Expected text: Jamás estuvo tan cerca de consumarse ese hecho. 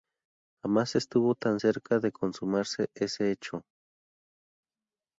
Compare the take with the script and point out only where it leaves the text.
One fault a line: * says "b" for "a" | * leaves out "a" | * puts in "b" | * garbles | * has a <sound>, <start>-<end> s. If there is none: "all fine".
all fine